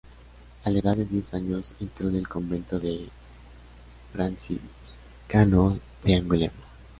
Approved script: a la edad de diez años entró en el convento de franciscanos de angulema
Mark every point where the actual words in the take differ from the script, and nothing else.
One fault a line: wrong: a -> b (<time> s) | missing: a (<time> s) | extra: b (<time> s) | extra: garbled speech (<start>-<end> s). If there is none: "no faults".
no faults